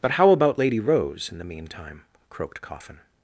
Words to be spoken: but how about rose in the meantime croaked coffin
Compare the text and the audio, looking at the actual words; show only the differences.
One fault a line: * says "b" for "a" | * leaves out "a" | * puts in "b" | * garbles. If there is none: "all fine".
* puts in "lady"